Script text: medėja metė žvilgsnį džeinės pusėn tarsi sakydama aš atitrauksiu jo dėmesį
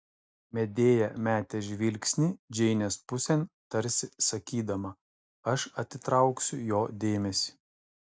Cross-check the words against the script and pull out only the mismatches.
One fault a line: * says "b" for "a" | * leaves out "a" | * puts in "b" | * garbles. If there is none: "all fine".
all fine